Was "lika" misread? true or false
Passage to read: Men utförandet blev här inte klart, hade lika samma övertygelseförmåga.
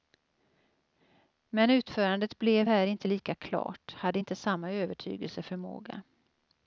true